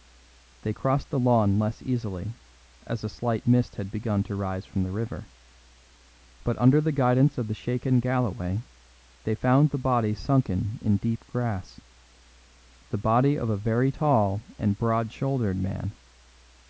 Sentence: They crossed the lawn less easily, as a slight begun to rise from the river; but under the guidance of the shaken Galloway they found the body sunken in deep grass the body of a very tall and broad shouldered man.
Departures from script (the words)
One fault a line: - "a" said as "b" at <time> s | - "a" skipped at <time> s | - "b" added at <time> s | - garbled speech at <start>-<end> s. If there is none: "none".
- "mist had" added at 3.5 s